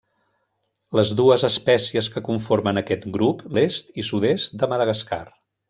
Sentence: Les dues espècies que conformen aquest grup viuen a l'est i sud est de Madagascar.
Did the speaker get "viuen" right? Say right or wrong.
wrong